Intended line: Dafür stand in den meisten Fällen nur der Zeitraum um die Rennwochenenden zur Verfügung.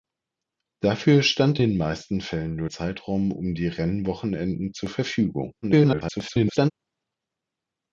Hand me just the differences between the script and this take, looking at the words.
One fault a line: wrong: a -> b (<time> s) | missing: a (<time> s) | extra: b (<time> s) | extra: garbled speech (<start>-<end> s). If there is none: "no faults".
missing: in (1.6 s)
missing: der (2.7 s)
extra: garbled speech (5.6-6.7 s)